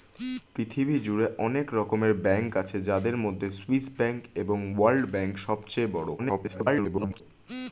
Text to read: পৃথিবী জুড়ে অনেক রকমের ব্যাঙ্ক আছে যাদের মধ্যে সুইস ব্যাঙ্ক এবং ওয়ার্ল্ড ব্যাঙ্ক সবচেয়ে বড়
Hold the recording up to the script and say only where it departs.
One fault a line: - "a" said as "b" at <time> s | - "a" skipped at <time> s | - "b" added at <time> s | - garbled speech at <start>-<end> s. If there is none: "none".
- garbled speech at 6.2-7.2 s